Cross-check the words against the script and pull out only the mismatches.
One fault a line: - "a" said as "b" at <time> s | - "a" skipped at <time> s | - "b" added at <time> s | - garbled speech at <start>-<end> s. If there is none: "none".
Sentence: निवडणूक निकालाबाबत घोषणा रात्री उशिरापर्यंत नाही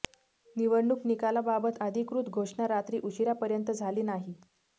- "अधिकृत" added at 1.8 s
- "झाली" added at 3.7 s